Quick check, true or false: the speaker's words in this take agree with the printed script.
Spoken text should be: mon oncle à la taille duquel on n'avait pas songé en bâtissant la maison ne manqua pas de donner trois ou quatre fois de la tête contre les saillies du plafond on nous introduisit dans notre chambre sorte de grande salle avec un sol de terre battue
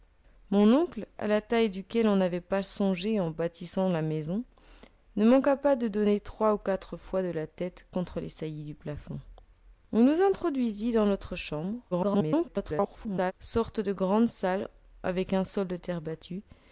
false